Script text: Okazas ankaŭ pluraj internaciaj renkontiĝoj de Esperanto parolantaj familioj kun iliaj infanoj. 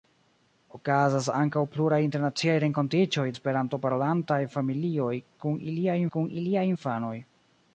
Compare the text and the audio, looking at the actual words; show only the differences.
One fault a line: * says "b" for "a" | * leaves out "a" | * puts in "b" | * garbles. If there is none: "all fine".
* leaves out "de"
* puts in "kun iliaj"